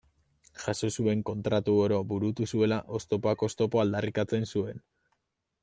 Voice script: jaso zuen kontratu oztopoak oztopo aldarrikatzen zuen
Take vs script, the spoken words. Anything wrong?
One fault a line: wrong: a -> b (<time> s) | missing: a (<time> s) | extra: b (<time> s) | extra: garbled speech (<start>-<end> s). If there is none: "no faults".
extra: oro burutu zuela (1.8 s)